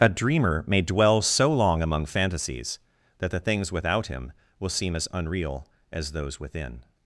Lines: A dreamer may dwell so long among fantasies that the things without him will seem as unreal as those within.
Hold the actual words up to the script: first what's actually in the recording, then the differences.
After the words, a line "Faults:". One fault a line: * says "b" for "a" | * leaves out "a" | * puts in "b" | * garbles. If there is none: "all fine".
A dreamer may dwell so long among fantasies that the things without him will seem as unreal as those within.
Faults:
all fine